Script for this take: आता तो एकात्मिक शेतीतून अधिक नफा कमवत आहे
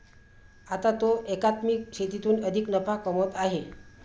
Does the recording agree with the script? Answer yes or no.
yes